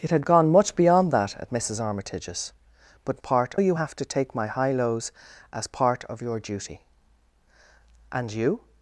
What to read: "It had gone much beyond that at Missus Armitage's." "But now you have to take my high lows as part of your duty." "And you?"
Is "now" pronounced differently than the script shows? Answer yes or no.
yes